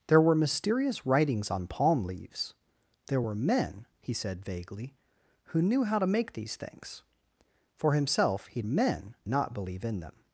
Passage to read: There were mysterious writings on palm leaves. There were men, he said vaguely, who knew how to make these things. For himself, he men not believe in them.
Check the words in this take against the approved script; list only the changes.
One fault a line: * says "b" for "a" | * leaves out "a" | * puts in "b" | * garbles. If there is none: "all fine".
all fine